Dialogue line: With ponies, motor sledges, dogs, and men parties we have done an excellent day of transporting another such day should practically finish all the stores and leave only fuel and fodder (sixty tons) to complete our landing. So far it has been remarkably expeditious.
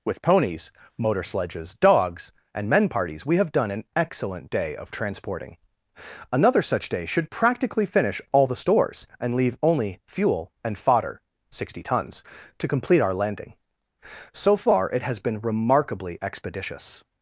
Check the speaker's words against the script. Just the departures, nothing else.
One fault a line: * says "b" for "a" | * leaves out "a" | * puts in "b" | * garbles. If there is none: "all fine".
all fine